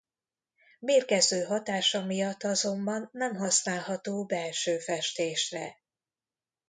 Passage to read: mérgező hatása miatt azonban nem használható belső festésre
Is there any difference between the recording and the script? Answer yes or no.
no